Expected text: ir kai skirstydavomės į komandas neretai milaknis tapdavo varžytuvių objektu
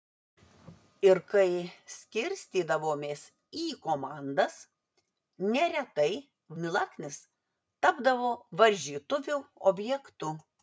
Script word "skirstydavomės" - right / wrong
right